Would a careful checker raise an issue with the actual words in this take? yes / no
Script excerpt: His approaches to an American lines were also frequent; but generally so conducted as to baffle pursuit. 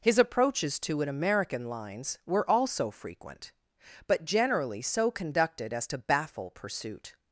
no